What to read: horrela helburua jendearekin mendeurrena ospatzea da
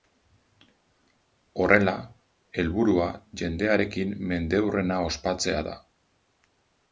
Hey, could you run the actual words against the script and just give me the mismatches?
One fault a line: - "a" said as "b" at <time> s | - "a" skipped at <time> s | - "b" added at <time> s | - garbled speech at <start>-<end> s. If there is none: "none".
none